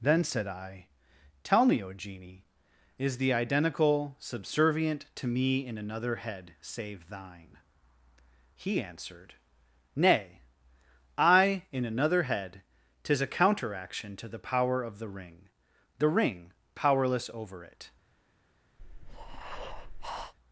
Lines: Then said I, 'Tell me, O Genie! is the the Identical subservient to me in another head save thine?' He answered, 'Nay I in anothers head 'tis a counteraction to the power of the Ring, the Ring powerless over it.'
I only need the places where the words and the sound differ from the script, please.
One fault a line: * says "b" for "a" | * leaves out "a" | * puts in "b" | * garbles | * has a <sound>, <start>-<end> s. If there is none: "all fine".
* leaves out "the"
* says "another" for "anothers"
* has a breath, 18.8-20.3 s